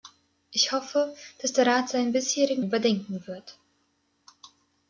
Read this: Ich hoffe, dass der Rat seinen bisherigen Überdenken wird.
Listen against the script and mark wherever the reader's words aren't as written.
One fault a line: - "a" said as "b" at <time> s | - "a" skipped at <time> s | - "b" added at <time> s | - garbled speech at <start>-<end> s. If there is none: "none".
none